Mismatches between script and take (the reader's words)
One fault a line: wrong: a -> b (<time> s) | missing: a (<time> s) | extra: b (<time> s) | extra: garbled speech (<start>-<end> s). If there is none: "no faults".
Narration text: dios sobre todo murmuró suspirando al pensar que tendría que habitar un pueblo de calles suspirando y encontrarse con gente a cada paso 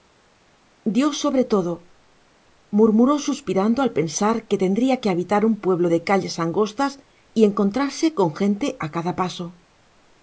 wrong: suspirando -> angostas (6.4 s)